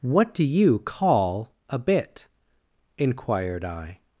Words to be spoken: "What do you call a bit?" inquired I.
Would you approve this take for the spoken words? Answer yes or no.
yes